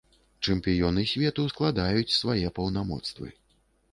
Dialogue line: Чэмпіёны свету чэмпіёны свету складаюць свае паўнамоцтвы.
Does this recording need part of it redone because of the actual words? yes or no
yes